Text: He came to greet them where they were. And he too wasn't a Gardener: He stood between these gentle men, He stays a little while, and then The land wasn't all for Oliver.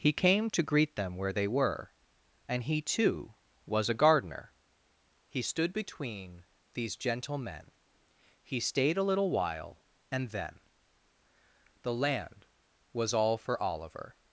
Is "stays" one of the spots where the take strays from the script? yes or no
yes